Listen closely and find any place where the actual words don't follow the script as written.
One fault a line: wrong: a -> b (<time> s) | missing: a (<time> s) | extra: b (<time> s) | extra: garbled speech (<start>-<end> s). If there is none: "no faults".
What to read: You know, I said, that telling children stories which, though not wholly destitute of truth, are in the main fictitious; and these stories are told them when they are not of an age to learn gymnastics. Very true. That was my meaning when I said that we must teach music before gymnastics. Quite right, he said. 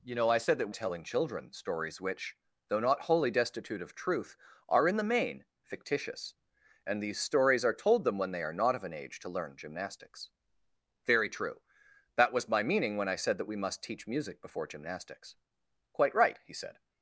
no faults